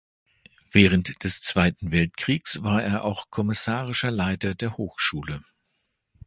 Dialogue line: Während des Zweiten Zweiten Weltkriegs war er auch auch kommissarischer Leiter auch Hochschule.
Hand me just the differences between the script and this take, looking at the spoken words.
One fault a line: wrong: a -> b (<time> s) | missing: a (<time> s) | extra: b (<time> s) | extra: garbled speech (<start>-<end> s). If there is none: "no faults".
missing: Zweiten (1.9 s)
missing: auch (3.3 s)
wrong: auch -> der (4.5 s)